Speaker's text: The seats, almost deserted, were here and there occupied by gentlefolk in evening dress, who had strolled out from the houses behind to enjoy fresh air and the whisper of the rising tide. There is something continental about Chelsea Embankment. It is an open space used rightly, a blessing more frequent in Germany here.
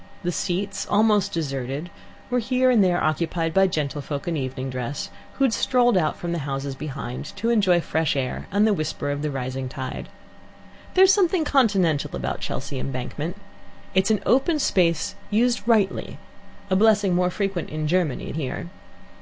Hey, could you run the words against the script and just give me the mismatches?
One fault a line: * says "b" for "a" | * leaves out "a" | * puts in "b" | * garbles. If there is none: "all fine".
all fine